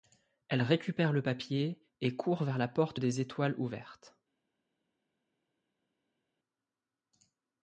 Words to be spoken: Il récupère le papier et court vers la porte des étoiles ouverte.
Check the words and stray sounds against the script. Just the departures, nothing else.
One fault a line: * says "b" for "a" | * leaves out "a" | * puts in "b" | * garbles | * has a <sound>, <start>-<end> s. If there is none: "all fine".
* says "Elle" for "Il"